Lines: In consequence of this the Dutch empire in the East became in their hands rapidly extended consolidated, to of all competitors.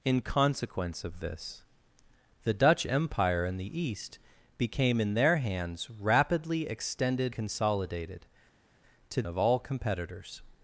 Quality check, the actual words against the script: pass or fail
pass